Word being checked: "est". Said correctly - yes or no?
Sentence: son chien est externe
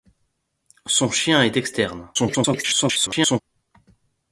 yes